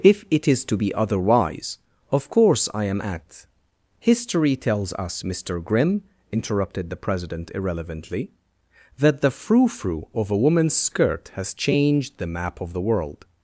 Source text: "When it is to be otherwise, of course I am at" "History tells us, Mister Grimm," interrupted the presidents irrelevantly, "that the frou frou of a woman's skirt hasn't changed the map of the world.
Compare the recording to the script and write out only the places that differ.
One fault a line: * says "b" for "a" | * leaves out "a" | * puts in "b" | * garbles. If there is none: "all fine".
* says "If" for "When"
* says "president" for "presidents"
* says "has" for "hasn't"